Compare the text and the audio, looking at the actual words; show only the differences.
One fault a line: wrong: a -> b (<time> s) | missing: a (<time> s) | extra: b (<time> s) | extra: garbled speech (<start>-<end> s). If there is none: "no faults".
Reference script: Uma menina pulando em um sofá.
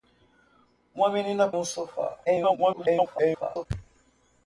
missing: pulando em (1.5 s)
extra: garbled speech (2.2-3.7 s)